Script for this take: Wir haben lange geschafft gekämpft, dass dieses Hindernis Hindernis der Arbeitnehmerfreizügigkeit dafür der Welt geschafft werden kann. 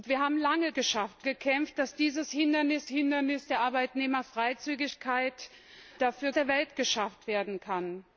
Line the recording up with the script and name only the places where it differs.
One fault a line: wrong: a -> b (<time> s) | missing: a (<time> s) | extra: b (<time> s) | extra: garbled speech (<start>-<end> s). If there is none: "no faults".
no faults